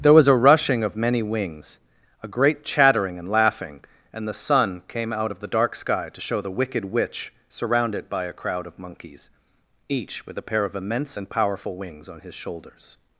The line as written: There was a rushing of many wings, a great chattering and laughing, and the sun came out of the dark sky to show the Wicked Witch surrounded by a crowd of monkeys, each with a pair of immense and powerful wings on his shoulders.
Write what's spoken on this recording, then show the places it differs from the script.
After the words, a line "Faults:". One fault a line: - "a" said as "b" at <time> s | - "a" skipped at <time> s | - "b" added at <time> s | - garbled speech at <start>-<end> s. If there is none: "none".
There was a rushing of many wings, a great chattering and laughing, and the sun came out of the dark sky to show the Wicked Witch surrounded by a crowd of monkeys, each with a pair of immense and powerful wings on his shoulders.
Faults:
none